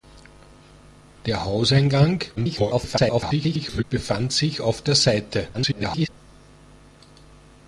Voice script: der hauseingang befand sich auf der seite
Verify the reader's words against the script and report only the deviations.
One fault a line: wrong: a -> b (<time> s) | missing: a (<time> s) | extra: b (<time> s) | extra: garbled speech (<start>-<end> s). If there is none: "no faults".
extra: garbled speech (2.4-3.8 s)
extra: garbled speech (5.5-6.1 s)